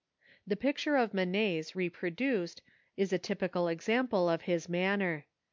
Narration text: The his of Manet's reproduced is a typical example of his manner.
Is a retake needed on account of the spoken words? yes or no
yes